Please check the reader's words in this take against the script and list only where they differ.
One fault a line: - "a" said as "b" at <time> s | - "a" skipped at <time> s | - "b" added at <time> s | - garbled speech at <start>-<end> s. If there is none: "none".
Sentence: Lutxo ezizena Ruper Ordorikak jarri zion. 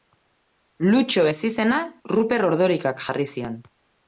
none